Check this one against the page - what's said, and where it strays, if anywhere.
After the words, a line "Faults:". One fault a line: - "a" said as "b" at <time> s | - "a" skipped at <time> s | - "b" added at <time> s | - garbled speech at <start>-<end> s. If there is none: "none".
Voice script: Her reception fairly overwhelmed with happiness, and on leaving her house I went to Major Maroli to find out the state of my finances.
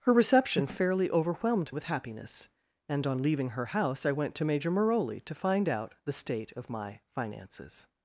Her reception fairly overwhelmed with happiness, and on leaving her house I went to Major Maroli to find out the state of my finances.
Faults:
none